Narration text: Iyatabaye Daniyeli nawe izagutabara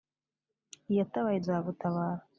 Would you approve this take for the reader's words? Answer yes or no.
no